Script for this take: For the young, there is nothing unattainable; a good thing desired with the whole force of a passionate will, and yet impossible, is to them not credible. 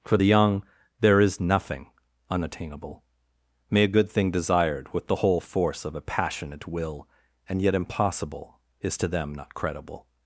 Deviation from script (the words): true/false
true